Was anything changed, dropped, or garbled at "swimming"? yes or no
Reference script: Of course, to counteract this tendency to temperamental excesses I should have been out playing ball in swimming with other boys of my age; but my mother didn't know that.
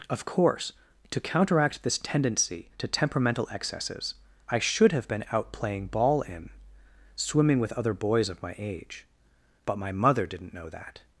no